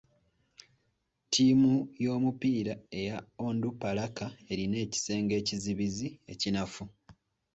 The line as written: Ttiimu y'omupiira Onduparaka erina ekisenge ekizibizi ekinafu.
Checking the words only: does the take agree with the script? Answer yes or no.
no